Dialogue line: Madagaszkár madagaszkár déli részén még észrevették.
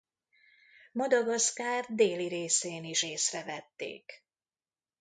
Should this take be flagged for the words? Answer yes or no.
yes